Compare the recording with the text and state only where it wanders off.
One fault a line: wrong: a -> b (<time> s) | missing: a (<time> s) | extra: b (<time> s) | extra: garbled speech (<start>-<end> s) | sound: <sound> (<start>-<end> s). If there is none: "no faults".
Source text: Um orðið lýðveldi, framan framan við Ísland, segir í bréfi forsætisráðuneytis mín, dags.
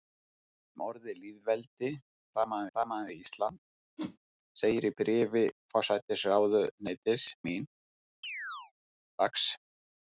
sound: whoosh (4.0-4.2 s)
sound: chirp (8.2-8.7 s)